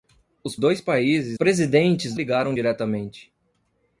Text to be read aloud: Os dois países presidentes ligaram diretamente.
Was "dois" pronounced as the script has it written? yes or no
yes